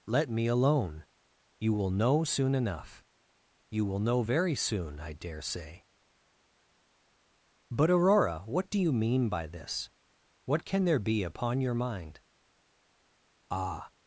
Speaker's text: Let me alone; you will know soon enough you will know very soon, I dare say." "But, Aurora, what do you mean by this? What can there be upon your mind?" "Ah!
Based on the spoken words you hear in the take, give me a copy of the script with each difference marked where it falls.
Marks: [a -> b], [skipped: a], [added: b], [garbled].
Let me alone; you will know soon enough you will know very soon, I dare say." "But, Aurora, what do you mean by this? What can there be upon your mind?" "Ah!